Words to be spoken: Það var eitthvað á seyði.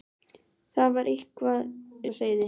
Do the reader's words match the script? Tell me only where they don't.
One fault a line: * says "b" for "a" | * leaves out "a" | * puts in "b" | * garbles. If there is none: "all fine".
all fine